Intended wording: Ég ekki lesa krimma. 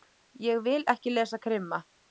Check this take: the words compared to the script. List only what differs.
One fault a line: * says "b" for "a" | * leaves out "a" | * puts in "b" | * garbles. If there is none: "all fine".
* puts in "vil"